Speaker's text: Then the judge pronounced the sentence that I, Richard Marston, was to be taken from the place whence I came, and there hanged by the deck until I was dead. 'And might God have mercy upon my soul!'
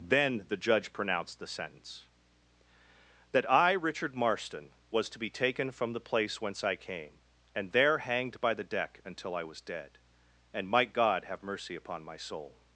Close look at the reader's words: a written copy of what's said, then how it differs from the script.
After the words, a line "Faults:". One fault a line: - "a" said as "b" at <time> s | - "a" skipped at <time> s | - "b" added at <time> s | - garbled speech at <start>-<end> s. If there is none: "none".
Then the judge pronounced the sentence that I, Richard Marston, was to be taken from the place whence I came, and there hanged by the deck until I was dead. 'And might God have mercy upon my soul!'
Faults:
none